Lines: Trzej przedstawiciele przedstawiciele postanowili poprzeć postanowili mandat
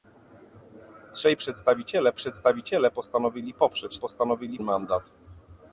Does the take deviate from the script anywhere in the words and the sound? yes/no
no